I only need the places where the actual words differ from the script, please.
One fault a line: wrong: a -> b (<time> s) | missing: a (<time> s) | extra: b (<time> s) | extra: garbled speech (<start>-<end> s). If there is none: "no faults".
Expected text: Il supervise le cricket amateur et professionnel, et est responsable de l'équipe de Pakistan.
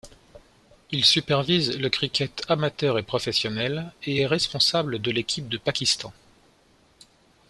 no faults